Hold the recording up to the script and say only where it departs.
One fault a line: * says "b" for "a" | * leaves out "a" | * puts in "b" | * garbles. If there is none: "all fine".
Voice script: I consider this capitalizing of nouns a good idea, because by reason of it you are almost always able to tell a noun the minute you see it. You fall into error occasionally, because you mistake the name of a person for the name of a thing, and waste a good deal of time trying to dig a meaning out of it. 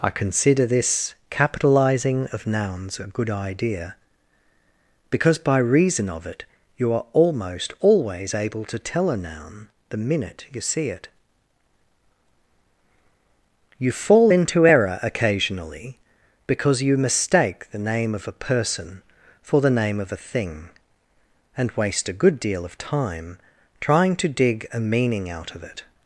all fine